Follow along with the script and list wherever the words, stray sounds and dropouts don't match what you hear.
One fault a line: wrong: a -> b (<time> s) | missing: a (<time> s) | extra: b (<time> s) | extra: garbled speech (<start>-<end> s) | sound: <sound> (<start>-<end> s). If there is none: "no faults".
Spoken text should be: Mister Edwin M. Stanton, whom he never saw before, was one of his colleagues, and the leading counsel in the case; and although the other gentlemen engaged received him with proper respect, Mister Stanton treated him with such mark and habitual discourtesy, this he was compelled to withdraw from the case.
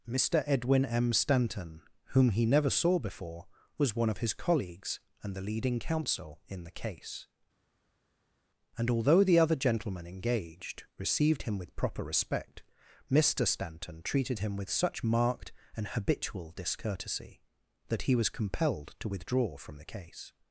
wrong: mark -> marked (15.0 s)
wrong: this -> that (17.9 s)